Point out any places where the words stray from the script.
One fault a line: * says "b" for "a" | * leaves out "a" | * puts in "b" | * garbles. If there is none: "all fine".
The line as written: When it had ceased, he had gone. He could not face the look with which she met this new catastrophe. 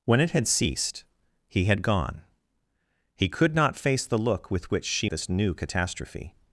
* leaves out "met"